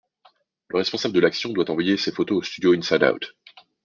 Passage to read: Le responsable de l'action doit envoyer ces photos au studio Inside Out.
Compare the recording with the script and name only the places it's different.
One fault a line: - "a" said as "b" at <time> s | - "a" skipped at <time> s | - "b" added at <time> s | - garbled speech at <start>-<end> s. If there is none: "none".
none